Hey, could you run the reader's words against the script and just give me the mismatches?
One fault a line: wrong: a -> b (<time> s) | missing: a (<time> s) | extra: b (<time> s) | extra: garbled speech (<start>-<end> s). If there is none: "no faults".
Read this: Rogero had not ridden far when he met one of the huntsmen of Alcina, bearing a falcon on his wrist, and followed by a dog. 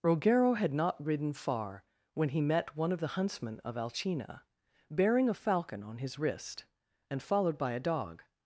no faults